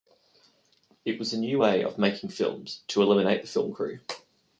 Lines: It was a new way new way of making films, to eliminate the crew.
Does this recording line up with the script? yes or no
no